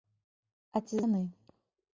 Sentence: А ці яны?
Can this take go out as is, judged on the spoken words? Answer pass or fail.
pass